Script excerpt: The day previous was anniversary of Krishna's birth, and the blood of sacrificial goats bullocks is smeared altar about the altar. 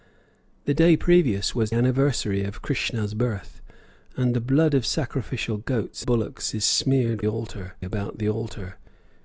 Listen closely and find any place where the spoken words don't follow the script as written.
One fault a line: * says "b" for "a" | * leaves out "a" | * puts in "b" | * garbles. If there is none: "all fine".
all fine